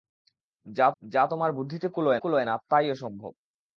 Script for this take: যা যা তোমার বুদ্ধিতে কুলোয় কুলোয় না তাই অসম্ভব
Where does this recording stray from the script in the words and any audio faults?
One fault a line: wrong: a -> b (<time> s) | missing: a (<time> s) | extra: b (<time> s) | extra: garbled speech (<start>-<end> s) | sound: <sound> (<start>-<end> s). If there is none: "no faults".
no faults